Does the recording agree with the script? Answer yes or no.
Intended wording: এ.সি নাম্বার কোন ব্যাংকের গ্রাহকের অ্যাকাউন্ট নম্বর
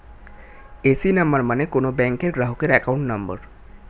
no